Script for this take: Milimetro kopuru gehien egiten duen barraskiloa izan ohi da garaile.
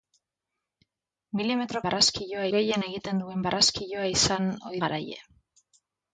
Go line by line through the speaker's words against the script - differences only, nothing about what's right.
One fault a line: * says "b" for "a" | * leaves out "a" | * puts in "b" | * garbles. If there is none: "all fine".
* says "barraskiloa" for "kopuru"
* leaves out "da"